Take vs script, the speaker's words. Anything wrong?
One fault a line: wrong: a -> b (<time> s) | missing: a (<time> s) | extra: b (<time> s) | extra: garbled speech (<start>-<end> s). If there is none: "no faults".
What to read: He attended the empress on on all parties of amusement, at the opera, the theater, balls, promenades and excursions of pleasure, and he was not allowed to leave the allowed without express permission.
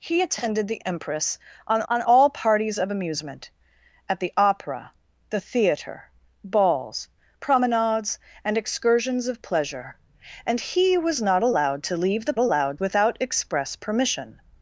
no faults